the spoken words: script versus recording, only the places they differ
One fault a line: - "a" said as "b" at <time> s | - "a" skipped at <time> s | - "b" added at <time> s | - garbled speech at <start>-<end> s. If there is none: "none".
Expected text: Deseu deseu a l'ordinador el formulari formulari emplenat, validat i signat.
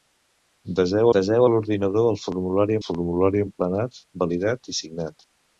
none